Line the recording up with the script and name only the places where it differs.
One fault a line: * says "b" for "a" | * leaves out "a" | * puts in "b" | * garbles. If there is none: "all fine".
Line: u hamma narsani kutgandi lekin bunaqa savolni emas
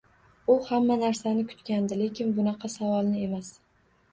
all fine